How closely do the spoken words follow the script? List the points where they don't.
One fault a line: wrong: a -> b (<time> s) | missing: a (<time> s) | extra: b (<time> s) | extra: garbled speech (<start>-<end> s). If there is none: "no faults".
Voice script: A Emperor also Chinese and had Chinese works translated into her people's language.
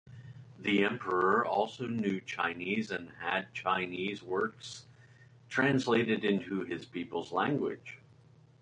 wrong: A -> The (0.6 s)
extra: knew (1.9 s)
wrong: her -> his (6.6 s)